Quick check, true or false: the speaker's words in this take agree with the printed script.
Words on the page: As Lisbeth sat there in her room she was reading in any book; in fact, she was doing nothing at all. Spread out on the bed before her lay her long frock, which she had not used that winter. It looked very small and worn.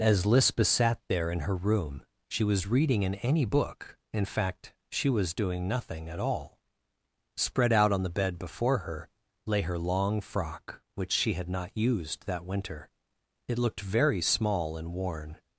true